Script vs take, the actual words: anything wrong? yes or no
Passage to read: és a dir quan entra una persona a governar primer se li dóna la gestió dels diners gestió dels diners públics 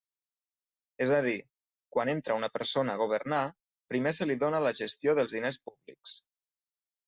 yes